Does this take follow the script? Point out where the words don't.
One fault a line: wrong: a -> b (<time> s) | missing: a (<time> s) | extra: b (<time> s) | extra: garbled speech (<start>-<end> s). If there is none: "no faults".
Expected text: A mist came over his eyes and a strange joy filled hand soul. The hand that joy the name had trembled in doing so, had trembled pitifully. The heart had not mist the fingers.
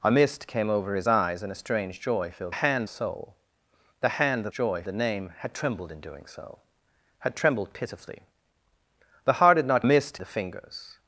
no faults